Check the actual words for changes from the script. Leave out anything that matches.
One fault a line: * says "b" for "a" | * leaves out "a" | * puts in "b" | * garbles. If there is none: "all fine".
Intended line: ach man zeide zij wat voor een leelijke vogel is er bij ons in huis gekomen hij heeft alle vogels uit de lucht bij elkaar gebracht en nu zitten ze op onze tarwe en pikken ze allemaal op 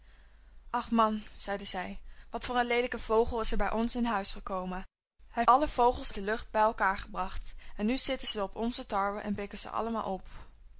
* leaves out "heeft"
* leaves out "uit"